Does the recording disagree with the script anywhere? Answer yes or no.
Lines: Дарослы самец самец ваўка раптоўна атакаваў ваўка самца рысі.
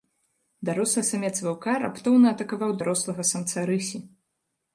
yes